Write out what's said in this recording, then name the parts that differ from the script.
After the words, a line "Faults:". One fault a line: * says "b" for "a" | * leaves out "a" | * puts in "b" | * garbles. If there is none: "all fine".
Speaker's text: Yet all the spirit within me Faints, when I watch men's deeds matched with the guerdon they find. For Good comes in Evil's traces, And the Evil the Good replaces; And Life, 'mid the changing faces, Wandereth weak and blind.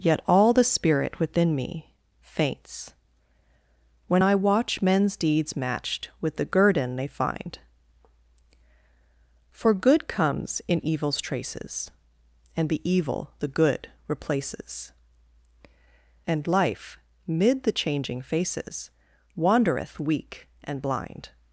Yet all the spirit within me Faints, when I watch men's deeds matched with the guerdon they find. For Good comes in Evil's traces, And the Evil the Good replaces; And Life, 'mid the changing faces, Wandereth weak and blind.
Faults:
all fine